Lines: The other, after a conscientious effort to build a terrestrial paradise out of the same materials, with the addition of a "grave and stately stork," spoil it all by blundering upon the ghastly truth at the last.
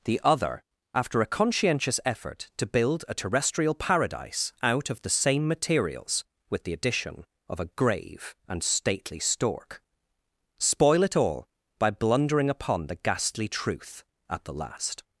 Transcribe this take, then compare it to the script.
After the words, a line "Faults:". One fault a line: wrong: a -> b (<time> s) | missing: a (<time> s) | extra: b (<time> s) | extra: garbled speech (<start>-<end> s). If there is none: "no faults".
The other, after a conscientious effort to build a terrestrial paradise out of the same materials, with the addition of a "grave and stately stork," spoil it all by blundering upon the ghastly truth at the last.
Faults:
no faults